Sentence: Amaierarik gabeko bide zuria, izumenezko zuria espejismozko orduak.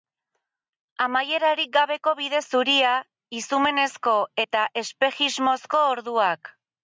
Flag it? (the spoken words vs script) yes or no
yes